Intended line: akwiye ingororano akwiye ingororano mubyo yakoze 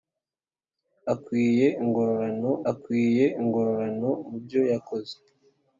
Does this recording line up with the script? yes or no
yes